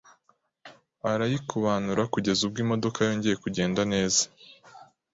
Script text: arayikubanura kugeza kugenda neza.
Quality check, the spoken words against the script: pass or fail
fail